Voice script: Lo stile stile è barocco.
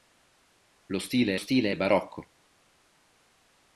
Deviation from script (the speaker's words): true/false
false